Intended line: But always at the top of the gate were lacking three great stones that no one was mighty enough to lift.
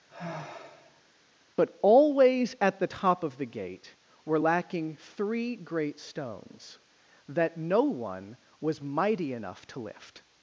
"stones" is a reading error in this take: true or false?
false